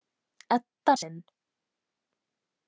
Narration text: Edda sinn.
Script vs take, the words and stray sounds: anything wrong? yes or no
no